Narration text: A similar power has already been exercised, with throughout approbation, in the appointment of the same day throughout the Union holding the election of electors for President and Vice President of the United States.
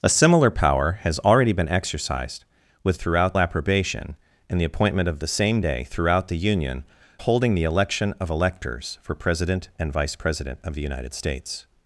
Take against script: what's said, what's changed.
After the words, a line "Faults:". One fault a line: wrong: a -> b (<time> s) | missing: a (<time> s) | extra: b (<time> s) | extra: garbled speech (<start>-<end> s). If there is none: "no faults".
A similar power has already been exercised, with throughout approbation, in the appointment of the same day throughout the Union holding the election of electors for President and Vice President of the United States.
Faults:
no faults